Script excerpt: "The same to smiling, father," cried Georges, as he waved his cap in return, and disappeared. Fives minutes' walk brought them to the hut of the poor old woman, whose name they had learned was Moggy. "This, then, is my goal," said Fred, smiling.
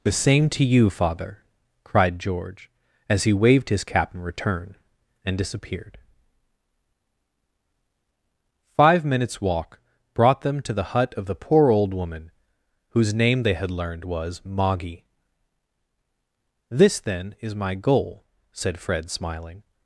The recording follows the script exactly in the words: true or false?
false